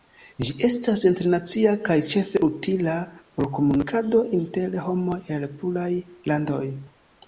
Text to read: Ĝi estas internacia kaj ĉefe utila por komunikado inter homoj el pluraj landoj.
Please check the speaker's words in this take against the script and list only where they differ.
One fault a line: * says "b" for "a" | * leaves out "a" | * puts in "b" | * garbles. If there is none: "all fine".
all fine